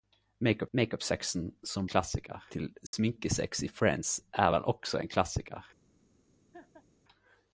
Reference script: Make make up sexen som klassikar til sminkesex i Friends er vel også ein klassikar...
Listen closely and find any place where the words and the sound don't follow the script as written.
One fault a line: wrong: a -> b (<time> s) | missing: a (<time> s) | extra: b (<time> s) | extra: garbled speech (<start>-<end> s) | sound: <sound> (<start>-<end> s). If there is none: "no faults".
sound: dropout (2.9-2.9 s)
sound: laugh (6.5-6.9 s)